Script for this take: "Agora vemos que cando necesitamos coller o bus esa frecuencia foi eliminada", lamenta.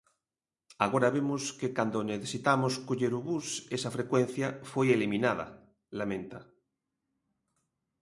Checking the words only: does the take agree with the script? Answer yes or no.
yes